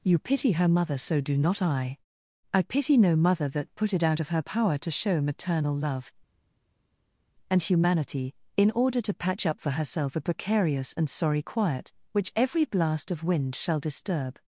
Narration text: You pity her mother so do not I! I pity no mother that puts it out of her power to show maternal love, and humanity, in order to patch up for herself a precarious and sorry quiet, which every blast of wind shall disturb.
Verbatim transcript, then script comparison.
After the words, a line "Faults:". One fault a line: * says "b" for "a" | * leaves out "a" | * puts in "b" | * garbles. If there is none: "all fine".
You pity her mother so do not I! I pity no mother that put it out of her power to show maternal love, and humanity, in order to patch up for herself a precarious and sorry quiet, which every blast of wind shall disturb.
Faults:
* says "put" for "puts"